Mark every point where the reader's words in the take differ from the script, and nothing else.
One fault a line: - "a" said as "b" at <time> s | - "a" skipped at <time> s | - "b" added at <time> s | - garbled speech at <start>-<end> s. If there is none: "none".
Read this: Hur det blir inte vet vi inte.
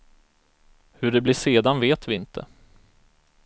- "inte" said as "sedan" at 1.3 s